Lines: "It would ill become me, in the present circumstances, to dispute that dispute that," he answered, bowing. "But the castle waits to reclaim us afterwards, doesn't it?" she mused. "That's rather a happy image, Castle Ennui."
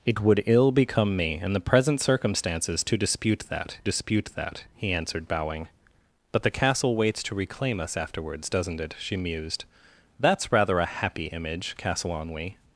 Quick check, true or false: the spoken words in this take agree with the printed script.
true